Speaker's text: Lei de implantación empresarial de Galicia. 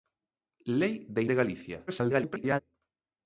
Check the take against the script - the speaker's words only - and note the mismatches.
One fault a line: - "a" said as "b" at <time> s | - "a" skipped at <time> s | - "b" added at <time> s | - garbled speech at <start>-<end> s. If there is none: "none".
- "implantación empresarial" skipped at 1.2 s
- garbled speech at 1.9-2.6 s